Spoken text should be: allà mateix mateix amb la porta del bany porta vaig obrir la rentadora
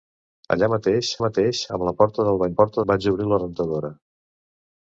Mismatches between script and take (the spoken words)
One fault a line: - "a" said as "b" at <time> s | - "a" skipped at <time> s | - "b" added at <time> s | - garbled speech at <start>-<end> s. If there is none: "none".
none